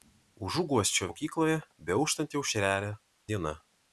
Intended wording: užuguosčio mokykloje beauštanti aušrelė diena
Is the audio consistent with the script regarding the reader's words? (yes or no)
yes